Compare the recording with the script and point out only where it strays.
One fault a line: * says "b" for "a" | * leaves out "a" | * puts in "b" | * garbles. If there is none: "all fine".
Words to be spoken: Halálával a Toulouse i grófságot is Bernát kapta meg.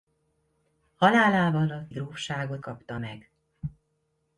* leaves out "Toulouse"
* leaves out "is Bernát"